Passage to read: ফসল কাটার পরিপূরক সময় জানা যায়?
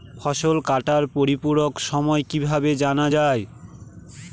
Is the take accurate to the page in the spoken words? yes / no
no